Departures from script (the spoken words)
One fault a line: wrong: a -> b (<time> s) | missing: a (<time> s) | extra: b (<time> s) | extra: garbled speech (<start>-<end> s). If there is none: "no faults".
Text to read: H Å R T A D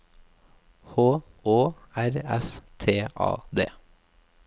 extra: S (2.4 s)